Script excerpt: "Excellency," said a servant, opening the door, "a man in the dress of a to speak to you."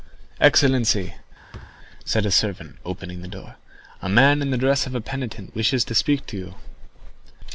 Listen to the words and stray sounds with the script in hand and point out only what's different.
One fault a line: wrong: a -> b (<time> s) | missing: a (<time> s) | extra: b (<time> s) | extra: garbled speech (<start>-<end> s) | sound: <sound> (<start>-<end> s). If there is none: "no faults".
sound: thud (1.5-1.8 s)
extra: penitent wishes (5.0 s)